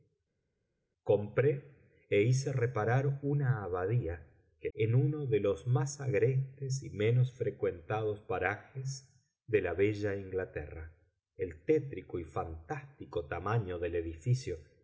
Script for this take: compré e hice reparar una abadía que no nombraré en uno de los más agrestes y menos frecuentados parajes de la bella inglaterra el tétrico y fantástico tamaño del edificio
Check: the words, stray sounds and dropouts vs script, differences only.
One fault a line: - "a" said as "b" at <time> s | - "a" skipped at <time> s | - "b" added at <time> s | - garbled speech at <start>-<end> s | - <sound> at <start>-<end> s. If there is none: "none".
- "no nombraré" skipped at 4.7 s